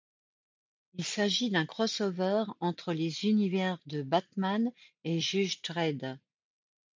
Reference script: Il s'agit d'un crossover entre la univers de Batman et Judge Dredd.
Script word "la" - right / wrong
wrong